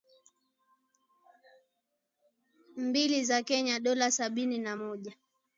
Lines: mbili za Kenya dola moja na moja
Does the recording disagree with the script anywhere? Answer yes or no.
yes